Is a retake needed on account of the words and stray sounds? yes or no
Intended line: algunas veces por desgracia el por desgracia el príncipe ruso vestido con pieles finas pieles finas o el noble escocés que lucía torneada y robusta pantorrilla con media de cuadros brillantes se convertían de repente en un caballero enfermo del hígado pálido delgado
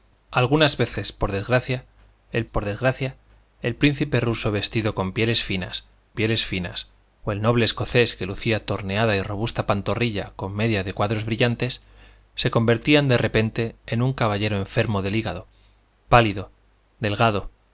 no